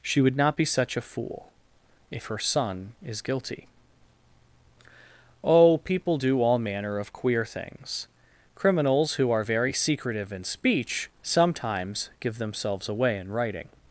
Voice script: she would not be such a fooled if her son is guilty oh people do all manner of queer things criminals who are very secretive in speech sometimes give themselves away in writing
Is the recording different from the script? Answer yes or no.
yes